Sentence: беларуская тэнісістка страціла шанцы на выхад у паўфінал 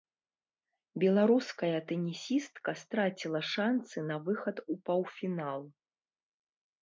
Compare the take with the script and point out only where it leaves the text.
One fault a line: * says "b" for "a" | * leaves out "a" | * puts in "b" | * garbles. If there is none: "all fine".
all fine